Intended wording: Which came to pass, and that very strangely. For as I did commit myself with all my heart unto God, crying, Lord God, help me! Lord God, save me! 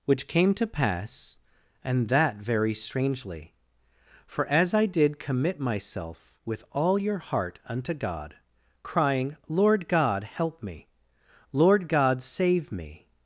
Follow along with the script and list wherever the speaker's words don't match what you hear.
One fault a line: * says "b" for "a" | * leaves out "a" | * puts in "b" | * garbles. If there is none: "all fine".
* says "your" for "my"